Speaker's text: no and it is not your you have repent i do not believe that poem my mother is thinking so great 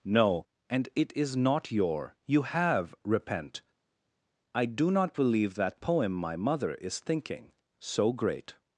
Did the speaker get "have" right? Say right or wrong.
right